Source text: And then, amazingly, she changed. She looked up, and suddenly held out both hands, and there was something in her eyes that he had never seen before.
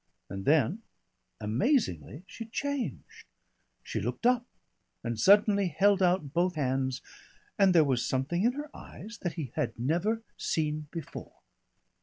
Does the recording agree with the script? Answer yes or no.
yes